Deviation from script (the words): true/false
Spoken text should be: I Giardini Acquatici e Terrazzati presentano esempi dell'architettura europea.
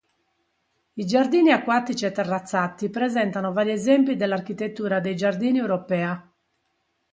true